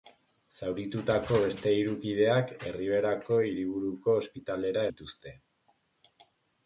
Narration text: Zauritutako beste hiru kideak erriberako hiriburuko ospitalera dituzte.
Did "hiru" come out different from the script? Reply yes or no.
no